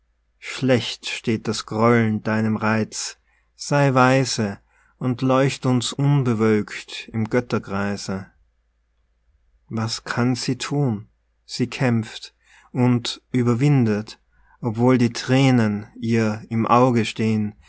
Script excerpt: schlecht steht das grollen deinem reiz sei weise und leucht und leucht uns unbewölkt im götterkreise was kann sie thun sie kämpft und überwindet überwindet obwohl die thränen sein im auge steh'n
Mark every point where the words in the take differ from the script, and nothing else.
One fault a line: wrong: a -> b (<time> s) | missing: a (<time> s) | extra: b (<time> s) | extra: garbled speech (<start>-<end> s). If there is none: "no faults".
missing: und leucht (5.7 s)
missing: überwindet (14.2 s)
wrong: sein -> ihr (16.0 s)